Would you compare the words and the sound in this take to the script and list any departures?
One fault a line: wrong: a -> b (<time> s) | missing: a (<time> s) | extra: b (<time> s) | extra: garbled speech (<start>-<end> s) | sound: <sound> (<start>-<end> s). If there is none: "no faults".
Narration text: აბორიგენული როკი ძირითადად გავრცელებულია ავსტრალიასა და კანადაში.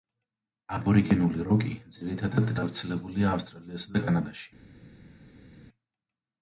no faults